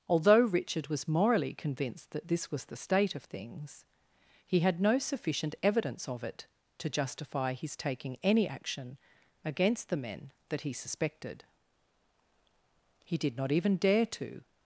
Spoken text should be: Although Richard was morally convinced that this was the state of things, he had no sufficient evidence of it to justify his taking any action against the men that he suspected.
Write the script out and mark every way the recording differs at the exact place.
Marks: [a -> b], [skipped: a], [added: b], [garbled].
Although Richard was morally convinced that this was the state of things, he had no sufficient evidence of it to justify his taking any action against the men that he suspected. [added: He did not even dare to]